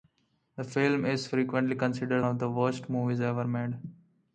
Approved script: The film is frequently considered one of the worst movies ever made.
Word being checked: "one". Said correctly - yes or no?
no